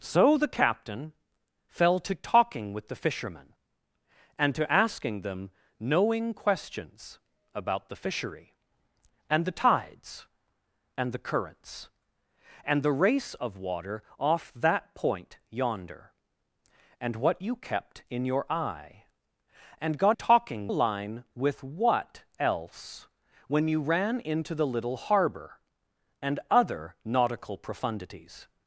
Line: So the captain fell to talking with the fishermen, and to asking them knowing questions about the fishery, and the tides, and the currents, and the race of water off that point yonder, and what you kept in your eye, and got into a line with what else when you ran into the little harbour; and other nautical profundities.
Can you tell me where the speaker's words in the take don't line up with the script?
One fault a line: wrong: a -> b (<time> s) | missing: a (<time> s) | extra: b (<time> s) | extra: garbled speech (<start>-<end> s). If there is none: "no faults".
wrong: into -> talking (20.1 s)